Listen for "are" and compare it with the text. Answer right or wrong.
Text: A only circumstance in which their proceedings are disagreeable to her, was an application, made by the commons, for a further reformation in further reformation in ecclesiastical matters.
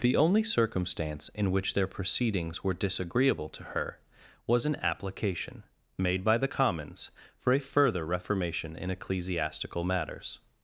wrong